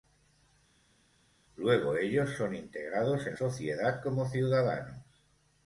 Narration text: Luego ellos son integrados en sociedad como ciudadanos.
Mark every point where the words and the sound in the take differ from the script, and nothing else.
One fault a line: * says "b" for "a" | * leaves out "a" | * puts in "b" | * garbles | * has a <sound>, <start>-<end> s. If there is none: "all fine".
all fine